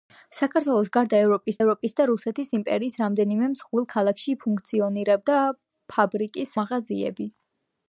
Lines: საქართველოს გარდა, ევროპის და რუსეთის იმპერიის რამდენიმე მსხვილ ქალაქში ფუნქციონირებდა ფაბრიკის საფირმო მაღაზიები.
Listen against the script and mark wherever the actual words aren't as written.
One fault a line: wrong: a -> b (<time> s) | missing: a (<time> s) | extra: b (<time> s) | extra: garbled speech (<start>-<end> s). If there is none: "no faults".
extra: ევროპის (1.6 s)
missing: საფირმო (6.6 s)